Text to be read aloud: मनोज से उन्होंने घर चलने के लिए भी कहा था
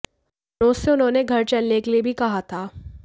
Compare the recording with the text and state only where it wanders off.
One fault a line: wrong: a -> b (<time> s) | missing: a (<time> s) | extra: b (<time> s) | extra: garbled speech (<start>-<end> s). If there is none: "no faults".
no faults